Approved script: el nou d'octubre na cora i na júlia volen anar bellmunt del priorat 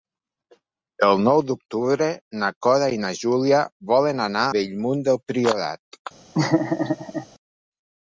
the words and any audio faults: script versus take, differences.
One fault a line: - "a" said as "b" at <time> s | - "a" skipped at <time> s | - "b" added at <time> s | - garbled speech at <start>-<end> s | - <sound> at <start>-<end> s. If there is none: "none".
- laugh at 6.3-7.3 s